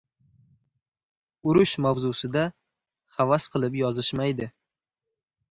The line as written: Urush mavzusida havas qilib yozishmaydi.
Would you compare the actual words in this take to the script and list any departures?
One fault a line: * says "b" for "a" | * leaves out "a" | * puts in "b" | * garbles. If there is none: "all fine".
all fine